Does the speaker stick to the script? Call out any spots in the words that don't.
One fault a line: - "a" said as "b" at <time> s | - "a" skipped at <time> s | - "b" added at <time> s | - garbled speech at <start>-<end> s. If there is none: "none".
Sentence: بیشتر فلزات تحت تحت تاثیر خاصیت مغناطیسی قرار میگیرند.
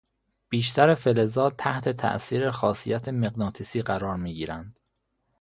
- "تحت" skipped at 1.9 s